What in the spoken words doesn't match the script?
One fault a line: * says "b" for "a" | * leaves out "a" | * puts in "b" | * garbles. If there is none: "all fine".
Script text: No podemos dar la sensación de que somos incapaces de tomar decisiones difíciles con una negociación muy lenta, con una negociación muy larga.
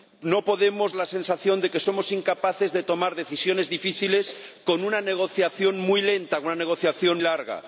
* leaves out "dar"
* leaves out "muy"